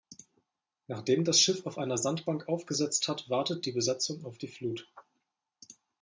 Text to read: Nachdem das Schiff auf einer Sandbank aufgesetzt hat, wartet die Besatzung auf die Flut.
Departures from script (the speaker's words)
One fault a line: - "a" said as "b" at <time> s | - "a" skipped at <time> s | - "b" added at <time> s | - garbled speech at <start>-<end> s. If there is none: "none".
none